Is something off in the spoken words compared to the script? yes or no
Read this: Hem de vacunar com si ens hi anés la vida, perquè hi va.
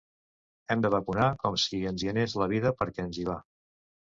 yes